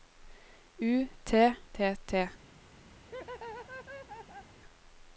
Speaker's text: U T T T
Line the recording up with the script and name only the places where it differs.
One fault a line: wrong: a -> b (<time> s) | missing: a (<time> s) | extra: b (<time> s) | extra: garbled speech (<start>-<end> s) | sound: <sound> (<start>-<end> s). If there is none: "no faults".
sound: laugh (3.0-4.6 s)